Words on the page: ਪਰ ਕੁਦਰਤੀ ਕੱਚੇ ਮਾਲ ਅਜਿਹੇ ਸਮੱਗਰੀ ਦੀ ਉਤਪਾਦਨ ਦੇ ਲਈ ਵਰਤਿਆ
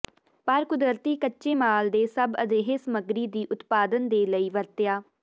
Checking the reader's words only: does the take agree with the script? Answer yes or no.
no